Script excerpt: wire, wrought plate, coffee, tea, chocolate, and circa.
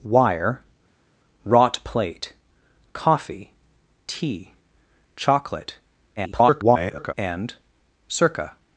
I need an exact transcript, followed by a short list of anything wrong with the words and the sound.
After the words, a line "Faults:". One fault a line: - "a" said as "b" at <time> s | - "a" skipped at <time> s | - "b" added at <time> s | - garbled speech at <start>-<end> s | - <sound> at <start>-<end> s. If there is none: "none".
wire, wrought plate, coffee, tea, chocolate, [garbled] and circa.
Faults:
- garbled speech at 6.2-7.1 s